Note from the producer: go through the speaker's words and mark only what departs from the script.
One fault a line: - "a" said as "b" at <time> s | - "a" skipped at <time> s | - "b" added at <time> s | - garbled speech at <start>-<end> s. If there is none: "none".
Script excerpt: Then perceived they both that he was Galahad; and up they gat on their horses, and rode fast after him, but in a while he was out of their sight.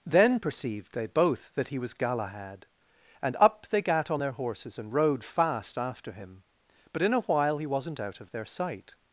- "was" said as "wasn't" at 7.7 s